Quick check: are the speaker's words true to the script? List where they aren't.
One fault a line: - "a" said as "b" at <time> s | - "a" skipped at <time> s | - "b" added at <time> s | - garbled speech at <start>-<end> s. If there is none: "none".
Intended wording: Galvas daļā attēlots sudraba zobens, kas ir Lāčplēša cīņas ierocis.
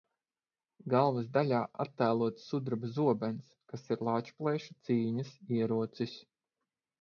none